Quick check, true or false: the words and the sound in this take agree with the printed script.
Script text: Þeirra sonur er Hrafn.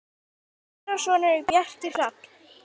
false